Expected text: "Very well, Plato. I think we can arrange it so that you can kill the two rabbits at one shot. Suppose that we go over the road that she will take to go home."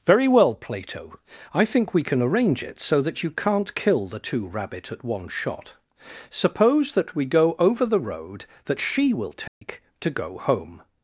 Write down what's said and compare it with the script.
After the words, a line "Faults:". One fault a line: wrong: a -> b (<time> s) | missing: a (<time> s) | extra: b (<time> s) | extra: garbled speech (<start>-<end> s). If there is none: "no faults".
"Very well, Plato. I think we can arrange it so that you can't kill the two rabbit at one shot. Suppose that we go over the road that she will take to go home."
Faults:
wrong: can -> can't (3.3 s)
wrong: rabbits -> rabbit (4.5 s)